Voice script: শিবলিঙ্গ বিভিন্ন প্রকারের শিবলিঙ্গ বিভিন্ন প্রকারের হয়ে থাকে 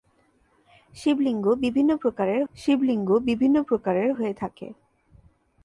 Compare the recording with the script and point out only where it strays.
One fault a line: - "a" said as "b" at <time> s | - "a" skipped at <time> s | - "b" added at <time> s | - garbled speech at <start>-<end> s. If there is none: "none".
none